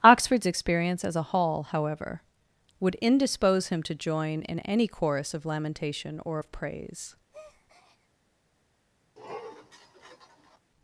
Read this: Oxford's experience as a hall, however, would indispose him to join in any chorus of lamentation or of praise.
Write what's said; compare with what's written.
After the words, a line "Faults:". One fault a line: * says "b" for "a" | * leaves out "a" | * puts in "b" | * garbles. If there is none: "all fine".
Oxford's experience as a hall, however, would indispose him to join in any chorus of lamentation or of praise.
Faults:
all fine